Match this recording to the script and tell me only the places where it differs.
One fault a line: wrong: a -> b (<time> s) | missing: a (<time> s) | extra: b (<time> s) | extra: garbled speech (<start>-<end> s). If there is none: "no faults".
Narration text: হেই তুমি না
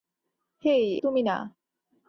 no faults